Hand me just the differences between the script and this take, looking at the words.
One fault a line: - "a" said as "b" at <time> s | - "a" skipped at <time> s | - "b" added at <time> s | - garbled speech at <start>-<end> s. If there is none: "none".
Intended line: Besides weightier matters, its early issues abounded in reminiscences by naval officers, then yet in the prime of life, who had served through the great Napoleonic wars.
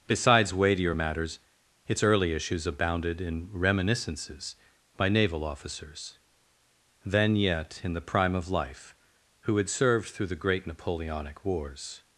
none